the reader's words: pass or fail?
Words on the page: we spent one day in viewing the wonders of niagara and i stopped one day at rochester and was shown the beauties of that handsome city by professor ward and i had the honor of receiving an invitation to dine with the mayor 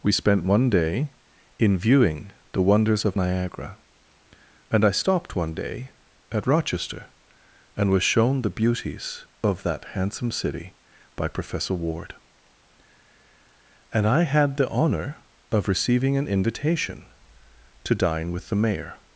pass